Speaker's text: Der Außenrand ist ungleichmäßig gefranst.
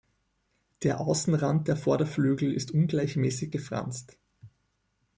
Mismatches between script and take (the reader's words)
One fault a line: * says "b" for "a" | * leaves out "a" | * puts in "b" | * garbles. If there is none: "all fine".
* puts in "der Vorderflügel"